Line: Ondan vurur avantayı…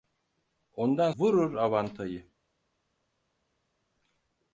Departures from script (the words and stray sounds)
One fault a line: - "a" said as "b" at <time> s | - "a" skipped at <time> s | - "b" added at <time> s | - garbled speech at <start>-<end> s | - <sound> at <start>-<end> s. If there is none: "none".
none